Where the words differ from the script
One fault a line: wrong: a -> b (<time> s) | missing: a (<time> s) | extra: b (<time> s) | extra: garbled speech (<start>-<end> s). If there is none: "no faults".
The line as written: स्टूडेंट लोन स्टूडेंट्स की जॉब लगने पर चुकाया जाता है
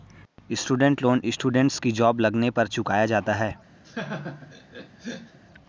no faults